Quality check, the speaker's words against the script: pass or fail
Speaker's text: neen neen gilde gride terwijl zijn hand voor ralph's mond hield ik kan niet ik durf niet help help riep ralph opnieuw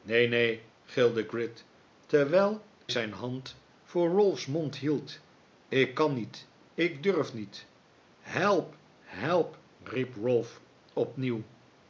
pass